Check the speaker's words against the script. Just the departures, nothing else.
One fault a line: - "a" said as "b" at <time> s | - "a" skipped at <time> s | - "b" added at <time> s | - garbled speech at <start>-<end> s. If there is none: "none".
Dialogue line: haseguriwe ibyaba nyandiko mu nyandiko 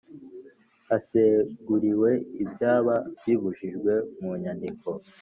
- "nyandiko" said as "bibujijwe" at 3.2 s